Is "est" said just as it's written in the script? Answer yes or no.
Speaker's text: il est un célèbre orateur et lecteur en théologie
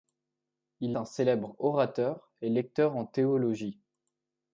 no